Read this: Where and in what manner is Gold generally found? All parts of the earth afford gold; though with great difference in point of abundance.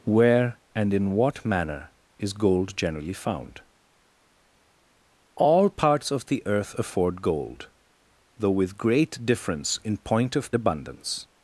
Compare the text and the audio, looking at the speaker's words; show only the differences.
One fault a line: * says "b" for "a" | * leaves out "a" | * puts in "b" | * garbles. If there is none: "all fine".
all fine